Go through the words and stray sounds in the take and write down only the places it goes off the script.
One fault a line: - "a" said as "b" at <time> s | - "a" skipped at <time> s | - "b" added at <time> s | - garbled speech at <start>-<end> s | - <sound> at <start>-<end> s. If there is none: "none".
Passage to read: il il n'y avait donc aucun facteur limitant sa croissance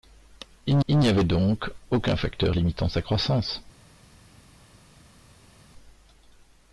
none